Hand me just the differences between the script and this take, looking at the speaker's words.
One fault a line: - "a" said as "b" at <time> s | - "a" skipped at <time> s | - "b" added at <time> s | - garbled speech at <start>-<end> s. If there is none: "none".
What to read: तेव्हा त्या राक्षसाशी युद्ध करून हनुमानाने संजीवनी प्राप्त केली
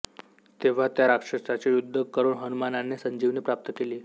none